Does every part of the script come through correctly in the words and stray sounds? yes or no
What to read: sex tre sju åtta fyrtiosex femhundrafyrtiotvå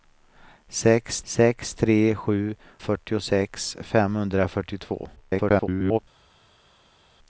no